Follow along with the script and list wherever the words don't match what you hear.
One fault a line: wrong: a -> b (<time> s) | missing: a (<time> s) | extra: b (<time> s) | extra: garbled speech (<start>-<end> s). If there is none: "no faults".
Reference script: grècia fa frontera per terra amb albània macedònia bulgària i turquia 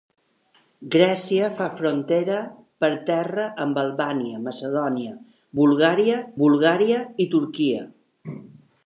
extra: bulgària (6.4 s)